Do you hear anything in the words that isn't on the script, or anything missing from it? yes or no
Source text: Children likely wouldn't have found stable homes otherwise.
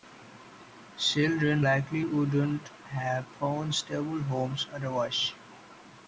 no